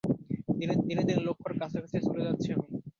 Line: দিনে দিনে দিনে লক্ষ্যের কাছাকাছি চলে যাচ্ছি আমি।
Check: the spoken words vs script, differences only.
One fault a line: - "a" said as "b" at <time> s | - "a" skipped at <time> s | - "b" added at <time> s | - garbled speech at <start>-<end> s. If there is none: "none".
none